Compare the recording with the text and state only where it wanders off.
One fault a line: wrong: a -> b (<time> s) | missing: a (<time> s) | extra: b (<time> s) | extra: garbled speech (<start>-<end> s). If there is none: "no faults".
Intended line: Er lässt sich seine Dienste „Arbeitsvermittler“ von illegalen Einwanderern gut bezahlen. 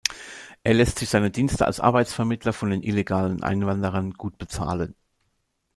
extra: als (1.7 s)
extra: den (2.7 s)